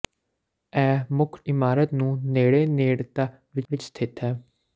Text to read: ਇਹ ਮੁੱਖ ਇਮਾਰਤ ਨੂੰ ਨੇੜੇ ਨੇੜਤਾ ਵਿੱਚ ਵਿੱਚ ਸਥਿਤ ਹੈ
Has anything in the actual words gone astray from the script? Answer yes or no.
no